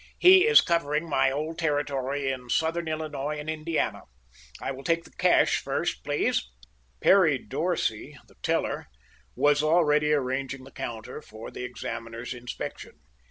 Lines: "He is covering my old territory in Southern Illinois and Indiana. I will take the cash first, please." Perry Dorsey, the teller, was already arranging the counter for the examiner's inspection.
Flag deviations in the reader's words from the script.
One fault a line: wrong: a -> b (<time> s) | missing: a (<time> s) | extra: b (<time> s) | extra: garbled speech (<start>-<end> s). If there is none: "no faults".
no faults